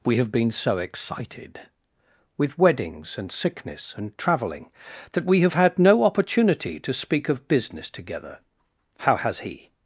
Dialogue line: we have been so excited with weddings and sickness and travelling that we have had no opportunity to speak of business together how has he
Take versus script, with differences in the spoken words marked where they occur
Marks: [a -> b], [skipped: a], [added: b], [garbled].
we have been so excited with weddings and sickness and travelling that we have had no opportunity to speak of business together how has he